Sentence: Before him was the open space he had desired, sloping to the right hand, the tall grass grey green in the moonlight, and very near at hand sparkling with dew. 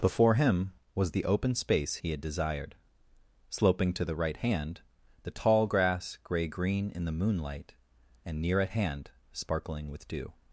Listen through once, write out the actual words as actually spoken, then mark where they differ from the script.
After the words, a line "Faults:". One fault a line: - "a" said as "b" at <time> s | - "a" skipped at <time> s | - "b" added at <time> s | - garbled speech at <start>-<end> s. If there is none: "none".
Before him was the open space he had desired, sloping to the right hand, the tall grass grey green in the moonlight, and near at hand sparkling with dew.
Faults:
- "very" skipped at 8.4 s